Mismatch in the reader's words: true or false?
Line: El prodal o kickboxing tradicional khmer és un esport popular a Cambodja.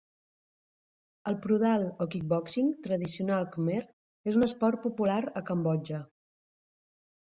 false